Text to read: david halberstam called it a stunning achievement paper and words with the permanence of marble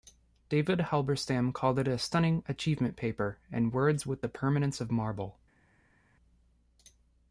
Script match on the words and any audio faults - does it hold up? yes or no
yes